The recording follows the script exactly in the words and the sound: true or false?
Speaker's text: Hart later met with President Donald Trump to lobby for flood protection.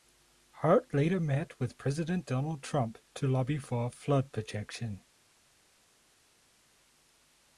true